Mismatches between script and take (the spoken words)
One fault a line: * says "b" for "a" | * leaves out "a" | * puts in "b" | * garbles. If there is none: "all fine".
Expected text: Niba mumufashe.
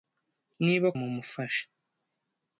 all fine